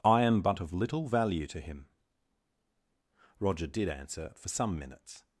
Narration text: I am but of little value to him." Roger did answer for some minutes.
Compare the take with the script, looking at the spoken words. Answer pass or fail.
pass